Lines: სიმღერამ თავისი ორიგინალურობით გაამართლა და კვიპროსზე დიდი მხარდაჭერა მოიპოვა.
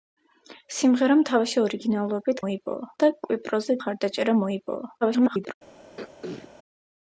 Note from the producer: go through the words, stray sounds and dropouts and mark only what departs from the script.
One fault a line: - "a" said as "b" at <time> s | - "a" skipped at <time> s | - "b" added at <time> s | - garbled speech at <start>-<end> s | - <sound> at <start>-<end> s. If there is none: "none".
- "გაამართლა" said as "მოიპოვა" at 2.4 s
- "დიდი" skipped at 3.8 s
- garbled speech at 5.0-5.5 s
- throat clearing at 6.0-6.5 s